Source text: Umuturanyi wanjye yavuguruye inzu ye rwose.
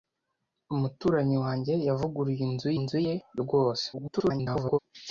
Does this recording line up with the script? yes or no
no